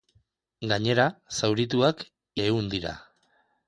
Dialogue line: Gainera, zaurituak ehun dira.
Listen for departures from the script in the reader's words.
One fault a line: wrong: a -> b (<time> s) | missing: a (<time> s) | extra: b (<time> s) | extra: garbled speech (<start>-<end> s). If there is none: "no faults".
no faults